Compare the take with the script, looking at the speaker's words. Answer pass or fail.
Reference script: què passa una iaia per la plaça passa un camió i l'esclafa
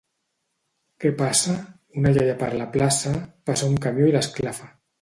pass